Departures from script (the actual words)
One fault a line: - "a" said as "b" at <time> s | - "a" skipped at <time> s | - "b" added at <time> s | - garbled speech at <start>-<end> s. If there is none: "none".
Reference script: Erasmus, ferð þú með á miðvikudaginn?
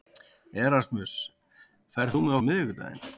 none